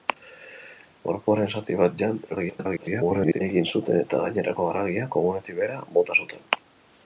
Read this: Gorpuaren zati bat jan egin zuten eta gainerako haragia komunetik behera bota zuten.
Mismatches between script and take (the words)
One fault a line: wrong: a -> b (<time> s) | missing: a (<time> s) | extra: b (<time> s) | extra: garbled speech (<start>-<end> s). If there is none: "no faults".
extra: garbled speech (2.3-3.4 s)